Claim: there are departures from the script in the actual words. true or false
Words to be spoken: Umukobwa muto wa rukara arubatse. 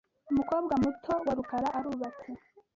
false